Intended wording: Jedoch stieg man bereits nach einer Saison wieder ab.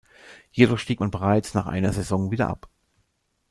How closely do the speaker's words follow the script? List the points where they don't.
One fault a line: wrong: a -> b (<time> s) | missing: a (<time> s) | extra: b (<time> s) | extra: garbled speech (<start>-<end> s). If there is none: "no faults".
no faults